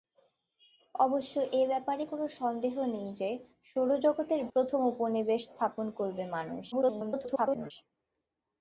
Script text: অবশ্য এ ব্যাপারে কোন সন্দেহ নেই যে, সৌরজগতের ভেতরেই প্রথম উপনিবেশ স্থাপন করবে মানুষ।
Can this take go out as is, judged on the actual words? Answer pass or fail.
fail